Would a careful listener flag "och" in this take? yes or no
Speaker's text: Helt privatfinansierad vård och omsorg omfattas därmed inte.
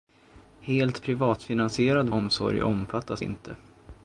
yes